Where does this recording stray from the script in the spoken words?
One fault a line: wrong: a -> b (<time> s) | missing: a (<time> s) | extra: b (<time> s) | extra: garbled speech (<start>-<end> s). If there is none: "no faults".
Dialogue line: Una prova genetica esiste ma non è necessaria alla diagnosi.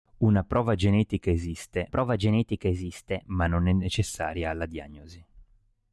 extra: prova genetica esiste (1.9 s)